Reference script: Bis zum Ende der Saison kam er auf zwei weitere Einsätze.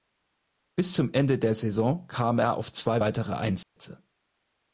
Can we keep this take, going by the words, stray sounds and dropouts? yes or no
no